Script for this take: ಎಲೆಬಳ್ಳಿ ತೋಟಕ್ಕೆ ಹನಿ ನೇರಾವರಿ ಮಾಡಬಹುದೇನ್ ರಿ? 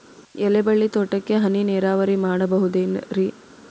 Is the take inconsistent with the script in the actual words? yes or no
no